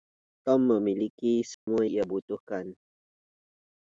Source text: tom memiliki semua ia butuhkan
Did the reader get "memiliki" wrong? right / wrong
right